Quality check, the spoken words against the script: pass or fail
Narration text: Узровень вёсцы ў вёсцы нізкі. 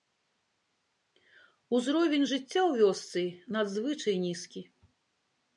fail